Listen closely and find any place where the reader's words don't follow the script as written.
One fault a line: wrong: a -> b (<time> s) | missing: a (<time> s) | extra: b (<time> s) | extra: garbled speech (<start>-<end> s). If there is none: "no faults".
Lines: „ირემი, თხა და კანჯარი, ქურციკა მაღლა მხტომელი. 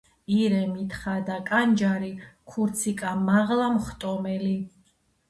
no faults